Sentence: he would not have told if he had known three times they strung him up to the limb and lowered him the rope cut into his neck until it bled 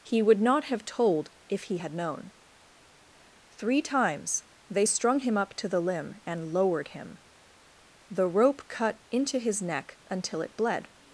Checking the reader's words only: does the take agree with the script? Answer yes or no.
yes